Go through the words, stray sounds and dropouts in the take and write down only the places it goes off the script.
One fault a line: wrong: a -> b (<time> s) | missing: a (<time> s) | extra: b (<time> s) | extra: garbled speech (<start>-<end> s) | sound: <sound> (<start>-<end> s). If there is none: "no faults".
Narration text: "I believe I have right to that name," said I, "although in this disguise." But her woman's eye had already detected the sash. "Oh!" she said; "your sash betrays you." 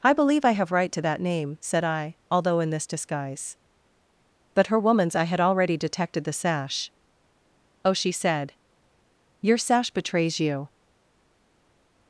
no faults